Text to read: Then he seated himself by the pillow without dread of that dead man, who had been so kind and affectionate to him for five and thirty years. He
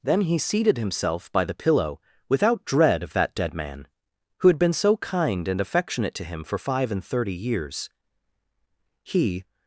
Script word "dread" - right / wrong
right